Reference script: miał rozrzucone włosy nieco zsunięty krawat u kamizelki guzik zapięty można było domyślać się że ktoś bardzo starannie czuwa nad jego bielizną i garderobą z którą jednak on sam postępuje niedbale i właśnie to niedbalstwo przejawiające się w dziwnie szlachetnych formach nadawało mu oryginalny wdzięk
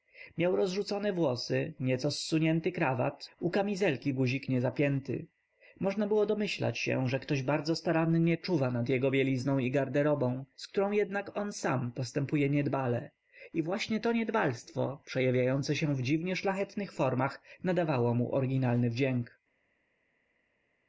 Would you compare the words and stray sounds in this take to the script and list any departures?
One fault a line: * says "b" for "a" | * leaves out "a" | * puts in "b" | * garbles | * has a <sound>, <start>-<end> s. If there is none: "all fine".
* puts in "nie"